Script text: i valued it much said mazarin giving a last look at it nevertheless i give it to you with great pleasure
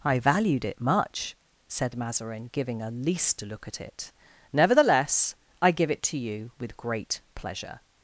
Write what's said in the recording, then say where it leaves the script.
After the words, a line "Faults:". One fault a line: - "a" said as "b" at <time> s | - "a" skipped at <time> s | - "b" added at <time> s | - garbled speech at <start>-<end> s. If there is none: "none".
i valued it much said mazarin giving a least look at it nevertheless i give it to you with great pleasure
Faults:
- "last" said as "least" at 2.9 s